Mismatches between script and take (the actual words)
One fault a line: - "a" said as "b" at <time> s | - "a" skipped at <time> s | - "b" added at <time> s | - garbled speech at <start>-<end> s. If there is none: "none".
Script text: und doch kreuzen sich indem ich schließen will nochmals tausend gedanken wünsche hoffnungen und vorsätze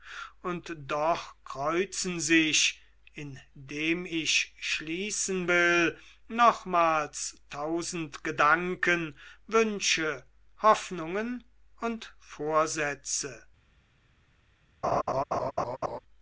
none